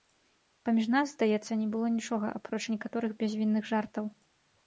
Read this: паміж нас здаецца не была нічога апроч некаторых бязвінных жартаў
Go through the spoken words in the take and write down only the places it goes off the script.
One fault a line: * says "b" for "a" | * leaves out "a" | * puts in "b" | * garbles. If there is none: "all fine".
* says "было" for "была"